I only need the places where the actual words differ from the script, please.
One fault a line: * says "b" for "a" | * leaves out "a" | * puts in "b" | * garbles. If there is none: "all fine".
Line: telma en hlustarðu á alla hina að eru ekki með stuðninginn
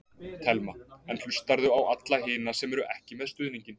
* says "sem" for "að"